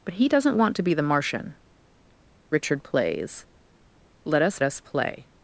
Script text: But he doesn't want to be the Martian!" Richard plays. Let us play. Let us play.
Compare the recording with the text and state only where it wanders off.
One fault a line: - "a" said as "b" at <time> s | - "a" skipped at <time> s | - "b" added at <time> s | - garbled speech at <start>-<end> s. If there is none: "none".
- "play Let" skipped at 4.6 s